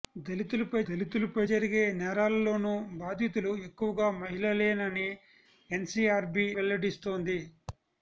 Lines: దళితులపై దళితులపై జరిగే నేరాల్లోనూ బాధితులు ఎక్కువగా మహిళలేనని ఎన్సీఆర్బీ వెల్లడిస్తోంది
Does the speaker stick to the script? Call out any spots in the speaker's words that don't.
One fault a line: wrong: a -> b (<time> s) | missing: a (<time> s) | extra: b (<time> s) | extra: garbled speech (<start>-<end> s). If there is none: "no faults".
no faults